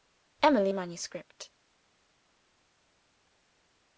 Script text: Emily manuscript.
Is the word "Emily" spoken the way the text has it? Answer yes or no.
yes